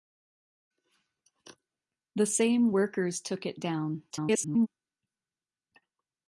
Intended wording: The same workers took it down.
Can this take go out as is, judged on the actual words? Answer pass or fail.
fail